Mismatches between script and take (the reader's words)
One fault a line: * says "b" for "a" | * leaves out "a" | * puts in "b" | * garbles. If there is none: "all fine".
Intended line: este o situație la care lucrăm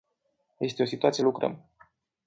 * leaves out "la care"